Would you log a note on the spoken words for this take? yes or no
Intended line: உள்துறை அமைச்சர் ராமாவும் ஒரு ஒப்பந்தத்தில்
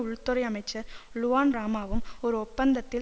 yes